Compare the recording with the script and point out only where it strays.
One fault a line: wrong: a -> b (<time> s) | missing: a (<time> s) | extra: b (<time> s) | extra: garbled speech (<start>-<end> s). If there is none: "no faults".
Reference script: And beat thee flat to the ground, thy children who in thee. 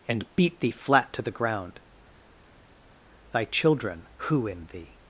no faults